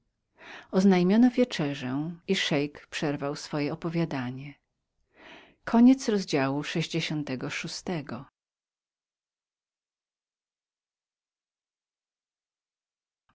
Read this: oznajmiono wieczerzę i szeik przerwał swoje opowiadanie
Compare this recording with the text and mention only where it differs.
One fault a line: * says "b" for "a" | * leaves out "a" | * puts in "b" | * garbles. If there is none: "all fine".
all fine